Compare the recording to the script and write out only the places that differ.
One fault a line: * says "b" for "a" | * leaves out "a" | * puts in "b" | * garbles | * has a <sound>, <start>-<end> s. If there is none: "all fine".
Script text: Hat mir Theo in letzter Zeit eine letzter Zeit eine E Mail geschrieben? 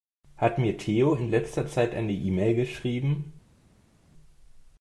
* leaves out "letzter Zeit eine"